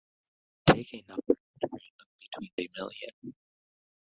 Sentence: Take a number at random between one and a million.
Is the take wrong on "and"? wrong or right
wrong